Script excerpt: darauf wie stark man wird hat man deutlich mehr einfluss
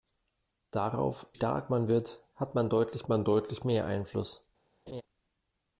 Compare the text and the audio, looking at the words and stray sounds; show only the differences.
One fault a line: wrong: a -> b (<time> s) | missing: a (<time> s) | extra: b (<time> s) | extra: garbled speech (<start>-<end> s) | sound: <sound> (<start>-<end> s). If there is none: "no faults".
missing: wie (1.3 s)
extra: man deutlich (3.1 s)
sound: laugh (4.9-5.0 s)